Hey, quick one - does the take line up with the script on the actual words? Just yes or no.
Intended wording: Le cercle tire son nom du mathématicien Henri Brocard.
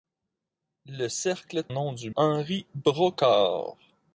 no